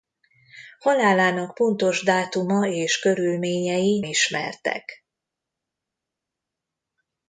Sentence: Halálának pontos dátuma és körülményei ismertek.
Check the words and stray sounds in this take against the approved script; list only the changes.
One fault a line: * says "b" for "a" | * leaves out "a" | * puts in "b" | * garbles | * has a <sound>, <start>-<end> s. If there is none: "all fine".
all fine